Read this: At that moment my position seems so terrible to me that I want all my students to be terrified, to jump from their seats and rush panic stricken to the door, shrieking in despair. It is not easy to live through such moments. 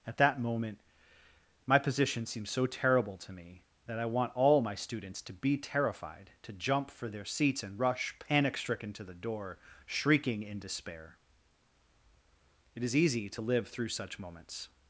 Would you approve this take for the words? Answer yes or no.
no